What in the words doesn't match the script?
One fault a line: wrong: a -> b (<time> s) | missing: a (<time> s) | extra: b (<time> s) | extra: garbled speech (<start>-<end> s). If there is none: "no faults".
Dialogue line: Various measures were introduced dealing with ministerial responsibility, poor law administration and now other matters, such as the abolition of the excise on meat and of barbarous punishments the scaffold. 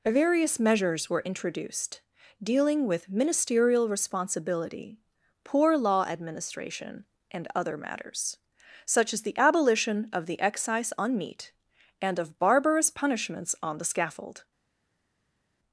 missing: now (7.5 s)
extra: on (13.6 s)